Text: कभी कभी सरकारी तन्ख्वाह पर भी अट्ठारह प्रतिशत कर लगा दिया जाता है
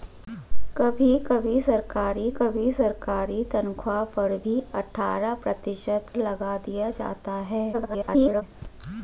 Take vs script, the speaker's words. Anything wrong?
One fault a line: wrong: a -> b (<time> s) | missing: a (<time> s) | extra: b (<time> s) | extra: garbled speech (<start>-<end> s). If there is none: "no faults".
extra: कभी सरकारी (2.3 s)
missing: कर (6.1 s)
extra: garbled speech (7.7-8.4 s)